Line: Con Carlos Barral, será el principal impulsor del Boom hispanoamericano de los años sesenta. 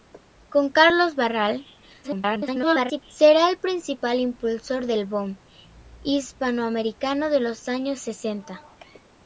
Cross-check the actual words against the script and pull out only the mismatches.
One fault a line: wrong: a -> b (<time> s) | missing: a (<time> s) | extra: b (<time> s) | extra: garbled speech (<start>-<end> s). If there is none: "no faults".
extra: garbled speech (2.0-3.0 s)